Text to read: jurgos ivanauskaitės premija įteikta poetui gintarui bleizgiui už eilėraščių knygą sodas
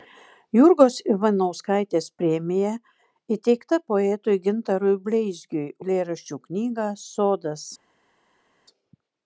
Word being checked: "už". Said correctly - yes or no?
no